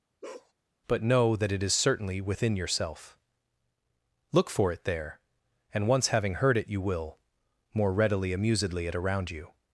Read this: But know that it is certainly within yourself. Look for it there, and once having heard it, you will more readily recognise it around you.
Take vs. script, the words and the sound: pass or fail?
fail